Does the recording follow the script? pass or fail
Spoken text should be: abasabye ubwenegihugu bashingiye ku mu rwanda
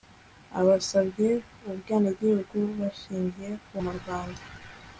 pass